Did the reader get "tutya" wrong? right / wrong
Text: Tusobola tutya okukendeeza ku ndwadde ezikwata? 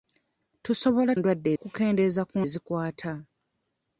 wrong